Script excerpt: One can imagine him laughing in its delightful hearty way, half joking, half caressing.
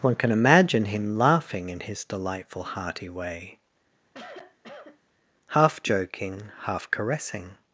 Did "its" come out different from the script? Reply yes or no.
yes